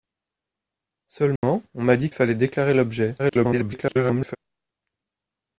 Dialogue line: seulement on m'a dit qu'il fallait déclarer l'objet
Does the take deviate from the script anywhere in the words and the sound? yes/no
yes